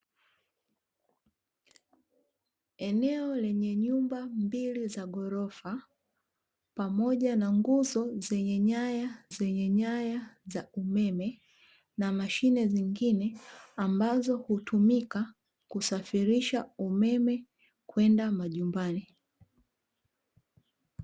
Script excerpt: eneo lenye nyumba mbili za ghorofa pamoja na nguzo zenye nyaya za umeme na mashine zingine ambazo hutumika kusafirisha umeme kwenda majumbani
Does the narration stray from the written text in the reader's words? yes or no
yes